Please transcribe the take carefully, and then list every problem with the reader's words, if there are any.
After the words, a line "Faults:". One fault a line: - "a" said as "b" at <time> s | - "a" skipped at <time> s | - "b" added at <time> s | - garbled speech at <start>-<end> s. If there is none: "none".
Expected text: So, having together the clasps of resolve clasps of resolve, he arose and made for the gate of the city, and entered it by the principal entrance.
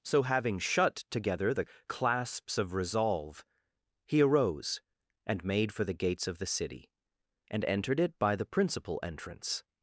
So, having shut together the clasps of resolve, he arose and made for the gates of the city, and entered it by the principal entrance.
Faults:
- "shut" added at 0.6 s
- "clasps of resolve" skipped at 3.4 s
- "gate" said as "gates" at 5.9 s